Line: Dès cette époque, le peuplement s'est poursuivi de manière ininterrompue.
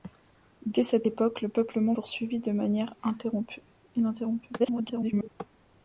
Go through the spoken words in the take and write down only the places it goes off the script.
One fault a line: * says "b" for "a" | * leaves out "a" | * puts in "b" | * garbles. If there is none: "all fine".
* leaves out "s'est"
* garbles